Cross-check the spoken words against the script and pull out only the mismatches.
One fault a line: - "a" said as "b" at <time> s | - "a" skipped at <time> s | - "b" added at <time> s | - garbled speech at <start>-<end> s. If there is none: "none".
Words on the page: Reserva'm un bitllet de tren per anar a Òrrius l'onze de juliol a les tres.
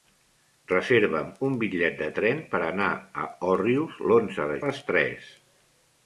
- "juliol" skipped at 4.6 s